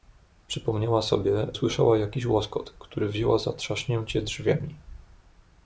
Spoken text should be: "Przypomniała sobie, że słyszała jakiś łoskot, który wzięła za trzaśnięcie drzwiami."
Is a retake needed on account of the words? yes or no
yes